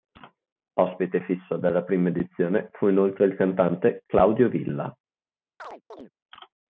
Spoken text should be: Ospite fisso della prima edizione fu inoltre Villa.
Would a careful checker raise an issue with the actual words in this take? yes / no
yes